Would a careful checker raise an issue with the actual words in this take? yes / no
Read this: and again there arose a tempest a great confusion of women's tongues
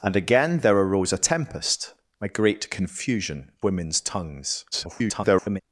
yes